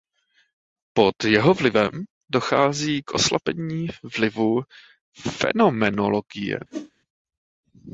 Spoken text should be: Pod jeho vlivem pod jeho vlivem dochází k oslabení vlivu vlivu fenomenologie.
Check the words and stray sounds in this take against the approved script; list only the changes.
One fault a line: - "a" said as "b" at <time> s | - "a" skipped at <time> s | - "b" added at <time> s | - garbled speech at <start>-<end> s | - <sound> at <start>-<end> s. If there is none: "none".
- "pod jeho vlivem" skipped at 1.9 s
- "vlivu" skipped at 4.6 s
- whoosh at 6.7-6.9 s